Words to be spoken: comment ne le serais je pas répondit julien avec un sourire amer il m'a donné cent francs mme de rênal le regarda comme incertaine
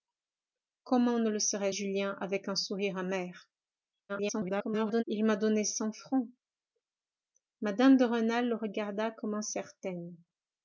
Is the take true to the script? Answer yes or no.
no